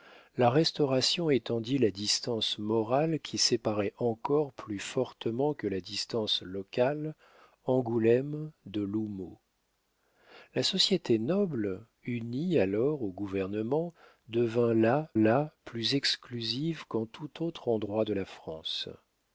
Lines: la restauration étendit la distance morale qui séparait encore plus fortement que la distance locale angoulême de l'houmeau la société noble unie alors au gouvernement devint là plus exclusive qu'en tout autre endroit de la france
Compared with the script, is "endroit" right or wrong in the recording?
right